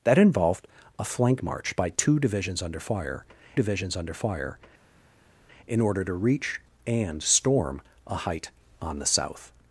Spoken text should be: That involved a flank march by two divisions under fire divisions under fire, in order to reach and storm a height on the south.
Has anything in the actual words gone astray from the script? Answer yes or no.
no